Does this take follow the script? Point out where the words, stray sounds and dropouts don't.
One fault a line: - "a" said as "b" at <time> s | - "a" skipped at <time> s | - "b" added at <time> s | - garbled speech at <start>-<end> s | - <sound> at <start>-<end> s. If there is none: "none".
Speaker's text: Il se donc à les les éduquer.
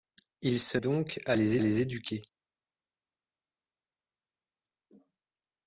none